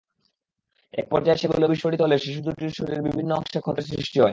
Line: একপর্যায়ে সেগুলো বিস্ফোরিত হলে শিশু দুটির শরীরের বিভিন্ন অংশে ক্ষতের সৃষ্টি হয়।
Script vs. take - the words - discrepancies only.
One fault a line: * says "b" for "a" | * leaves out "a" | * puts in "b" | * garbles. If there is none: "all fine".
all fine